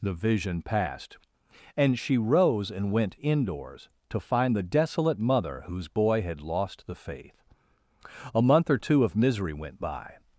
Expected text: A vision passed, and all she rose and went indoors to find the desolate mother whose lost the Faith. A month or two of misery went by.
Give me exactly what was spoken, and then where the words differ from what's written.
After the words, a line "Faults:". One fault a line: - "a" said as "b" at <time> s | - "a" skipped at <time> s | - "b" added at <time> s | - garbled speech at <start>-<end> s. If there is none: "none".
The vision passed, and she rose and went indoors to find the desolate mother whose boy had lost the Faith. A month or two of misery went by.
Faults:
- "A" said as "The" at 0.0 s
- "all" skipped at 2.0 s
- "boy had" added at 5.9 s